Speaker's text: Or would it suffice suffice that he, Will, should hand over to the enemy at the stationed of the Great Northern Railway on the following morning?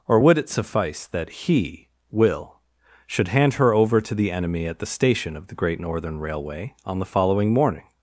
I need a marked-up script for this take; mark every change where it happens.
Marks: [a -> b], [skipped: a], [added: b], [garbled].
Or would it suffice [skipped: suffice] that he, Will, should hand [added: her] over to the enemy at the [stationed -> station] of the Great Northern Railway on the following morning?